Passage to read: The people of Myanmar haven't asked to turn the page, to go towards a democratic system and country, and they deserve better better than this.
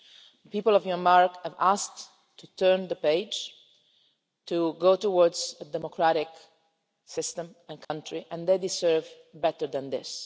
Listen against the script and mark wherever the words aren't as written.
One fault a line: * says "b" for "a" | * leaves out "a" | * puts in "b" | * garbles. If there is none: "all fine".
* says "have" for "haven't"
* leaves out "better"